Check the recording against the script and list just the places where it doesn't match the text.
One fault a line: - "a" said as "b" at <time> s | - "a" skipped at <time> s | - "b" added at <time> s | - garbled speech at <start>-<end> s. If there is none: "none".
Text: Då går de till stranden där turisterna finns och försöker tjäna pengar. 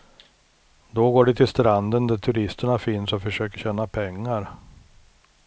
none